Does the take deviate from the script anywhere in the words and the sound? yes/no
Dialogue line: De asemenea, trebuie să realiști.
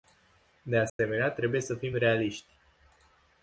yes